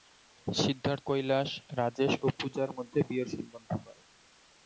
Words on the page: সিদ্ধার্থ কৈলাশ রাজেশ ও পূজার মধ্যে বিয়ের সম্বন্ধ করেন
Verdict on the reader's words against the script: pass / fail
pass